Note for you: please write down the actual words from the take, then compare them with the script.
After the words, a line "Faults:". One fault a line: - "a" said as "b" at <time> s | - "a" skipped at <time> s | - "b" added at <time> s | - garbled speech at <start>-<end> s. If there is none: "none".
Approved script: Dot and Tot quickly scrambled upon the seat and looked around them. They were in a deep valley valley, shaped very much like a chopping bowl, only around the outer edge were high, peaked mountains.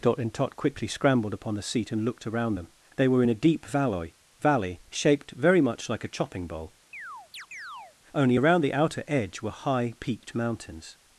Dot and Tot quickly scrambled upon the seat and looked around them. They were in a deep valley valley, shaped very much like a chopping bowl, only around the outer edge were high, peaked mountains.
Faults:
none